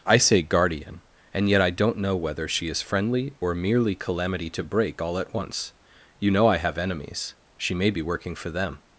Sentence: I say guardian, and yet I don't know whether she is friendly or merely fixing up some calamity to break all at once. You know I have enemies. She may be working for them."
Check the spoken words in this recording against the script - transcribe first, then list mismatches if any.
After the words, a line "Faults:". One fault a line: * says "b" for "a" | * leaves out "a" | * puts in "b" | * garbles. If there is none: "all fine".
I say guardian, and yet I don't know whether she is friendly or merely calamity to break all at once. You know I have enemies. She may be working for them."
Faults:
* leaves out "fixing up some"